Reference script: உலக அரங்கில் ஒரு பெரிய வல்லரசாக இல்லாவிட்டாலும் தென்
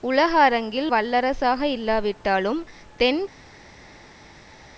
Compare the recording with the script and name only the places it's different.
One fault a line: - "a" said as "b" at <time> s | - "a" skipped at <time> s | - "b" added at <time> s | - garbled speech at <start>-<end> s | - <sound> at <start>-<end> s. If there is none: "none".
- "ஒரு பெரிய" skipped at 0.9 s